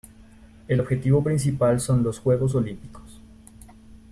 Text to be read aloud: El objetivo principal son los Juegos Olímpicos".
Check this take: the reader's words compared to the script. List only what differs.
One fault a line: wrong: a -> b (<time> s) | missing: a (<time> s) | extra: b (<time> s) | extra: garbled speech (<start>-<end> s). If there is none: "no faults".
no faults